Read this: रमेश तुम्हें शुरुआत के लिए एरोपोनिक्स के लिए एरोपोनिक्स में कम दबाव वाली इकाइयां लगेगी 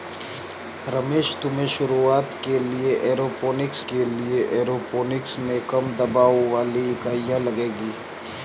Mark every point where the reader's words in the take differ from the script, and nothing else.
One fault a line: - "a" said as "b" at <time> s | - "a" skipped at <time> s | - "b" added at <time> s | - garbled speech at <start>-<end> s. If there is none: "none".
none